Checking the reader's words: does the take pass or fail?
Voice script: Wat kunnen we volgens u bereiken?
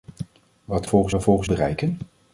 fail